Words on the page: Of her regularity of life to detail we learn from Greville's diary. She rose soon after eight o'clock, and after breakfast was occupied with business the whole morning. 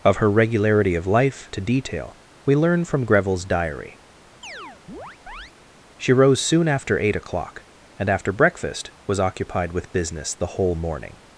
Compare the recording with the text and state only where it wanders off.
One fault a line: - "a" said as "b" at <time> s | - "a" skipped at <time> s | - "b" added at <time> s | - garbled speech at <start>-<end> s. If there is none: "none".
none